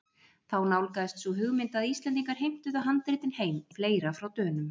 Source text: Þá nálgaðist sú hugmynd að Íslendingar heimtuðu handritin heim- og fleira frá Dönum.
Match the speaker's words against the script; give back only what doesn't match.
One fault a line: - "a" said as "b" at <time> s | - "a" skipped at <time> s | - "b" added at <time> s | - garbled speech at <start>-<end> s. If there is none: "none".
none